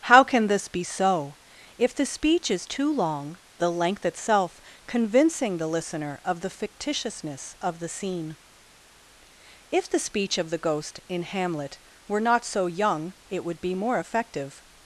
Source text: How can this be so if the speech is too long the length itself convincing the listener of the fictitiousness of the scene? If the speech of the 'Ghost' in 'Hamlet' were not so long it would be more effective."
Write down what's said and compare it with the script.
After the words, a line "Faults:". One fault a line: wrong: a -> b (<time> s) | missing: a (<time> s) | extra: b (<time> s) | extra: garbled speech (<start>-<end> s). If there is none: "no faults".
How can this be so if the speech is too long the length itself convincing the listener of the fictitiousness of the scene? If the speech of the 'Ghost' in 'Hamlet' were not so young it would be more effective."
Faults:
wrong: long -> young (12.7 s)